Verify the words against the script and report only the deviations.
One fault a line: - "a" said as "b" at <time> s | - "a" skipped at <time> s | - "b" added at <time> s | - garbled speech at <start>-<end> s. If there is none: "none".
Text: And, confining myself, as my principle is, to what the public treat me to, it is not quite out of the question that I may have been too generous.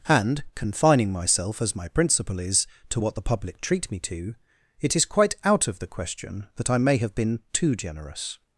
- "not" skipped at 5.0 s